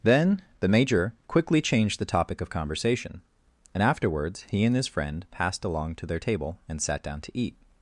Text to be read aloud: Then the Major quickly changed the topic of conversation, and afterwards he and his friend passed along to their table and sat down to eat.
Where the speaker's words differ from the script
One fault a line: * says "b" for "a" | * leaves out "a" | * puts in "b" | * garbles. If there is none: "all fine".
all fine